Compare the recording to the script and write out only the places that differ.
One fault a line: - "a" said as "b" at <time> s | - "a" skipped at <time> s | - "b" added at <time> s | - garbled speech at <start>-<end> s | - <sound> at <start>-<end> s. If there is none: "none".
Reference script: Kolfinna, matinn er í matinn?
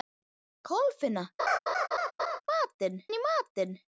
- laugh at 1.4-2.4 s